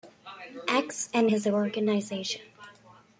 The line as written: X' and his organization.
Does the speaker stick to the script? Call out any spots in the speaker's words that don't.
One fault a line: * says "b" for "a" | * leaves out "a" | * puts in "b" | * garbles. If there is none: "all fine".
all fine